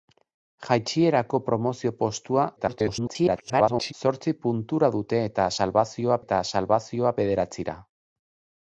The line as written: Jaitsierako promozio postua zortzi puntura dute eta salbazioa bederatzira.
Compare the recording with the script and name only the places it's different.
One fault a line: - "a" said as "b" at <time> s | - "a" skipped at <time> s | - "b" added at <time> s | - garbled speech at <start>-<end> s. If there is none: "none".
- garbled speech at 2.6-3.9 s
- "eta salbazioa" added at 6.2 s